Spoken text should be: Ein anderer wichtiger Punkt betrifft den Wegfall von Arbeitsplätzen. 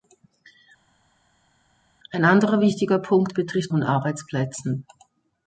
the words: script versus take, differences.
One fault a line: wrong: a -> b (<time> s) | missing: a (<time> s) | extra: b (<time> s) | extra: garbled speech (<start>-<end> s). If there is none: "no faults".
missing: den Wegfall (3.7 s)